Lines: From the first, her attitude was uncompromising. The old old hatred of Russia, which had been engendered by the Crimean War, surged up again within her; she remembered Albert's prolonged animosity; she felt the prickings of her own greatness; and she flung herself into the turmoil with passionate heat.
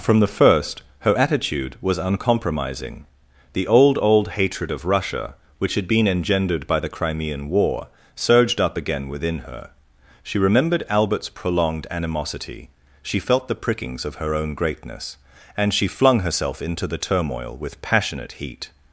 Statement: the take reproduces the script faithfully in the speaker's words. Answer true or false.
true